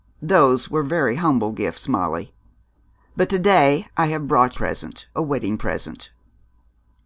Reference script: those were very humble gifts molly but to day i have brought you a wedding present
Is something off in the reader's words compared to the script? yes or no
yes